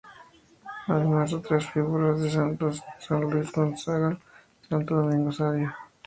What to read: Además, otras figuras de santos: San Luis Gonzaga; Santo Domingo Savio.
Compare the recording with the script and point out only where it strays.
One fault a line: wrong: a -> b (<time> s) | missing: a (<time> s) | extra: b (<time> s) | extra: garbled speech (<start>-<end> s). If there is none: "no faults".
no faults